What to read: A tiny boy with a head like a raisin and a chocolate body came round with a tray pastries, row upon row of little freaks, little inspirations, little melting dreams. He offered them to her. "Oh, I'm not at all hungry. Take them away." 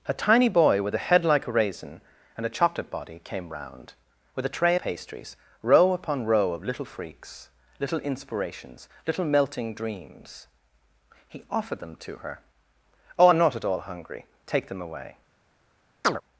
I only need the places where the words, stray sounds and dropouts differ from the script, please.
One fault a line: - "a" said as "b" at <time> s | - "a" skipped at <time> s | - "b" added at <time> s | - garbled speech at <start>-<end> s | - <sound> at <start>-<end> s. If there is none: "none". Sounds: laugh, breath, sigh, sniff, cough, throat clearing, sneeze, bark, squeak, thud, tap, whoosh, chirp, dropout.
- chirp at 16.0-16.2 s